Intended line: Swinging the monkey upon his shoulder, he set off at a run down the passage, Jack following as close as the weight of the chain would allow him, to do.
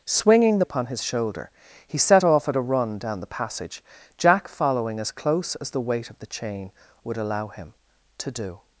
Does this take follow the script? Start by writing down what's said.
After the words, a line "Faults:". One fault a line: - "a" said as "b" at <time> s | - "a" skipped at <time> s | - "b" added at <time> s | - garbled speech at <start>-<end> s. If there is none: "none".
Swinging the upon his shoulder, he set off at a run down the passage, Jack following as close as the weight of the chain would allow him, to do.
Faults:
- "monkey" skipped at 0.7 s